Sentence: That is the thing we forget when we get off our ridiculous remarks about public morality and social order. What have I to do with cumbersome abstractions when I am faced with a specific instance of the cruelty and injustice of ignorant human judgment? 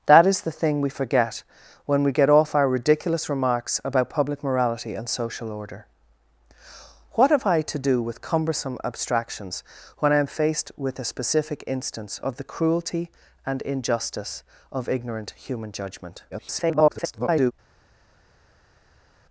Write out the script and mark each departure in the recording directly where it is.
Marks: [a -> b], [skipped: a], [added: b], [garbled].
That is the thing we forget when we get off our ridiculous remarks about public morality and social order. What have I to do with cumbersome abstractions when I am faced with a specific instance of the cruelty and injustice of ignorant human judgment? [garbled]